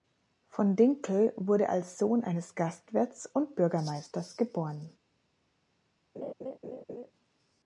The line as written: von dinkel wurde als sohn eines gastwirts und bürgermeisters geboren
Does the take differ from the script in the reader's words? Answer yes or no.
no